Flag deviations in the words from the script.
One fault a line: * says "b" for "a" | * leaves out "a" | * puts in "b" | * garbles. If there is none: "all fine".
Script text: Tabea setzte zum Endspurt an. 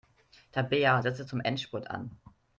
all fine